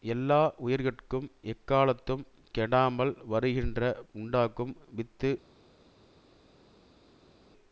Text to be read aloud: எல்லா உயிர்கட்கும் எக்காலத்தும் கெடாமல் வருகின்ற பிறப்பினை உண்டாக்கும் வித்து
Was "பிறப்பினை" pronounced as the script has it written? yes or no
no